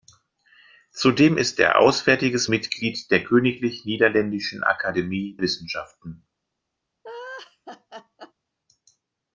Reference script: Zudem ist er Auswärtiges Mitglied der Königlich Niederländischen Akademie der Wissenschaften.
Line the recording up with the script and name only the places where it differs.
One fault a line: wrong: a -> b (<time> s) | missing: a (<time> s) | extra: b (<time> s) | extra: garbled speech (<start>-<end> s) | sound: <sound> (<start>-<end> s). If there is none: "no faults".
missing: der (5.4 s)
sound: laugh (7.0-8.3 s)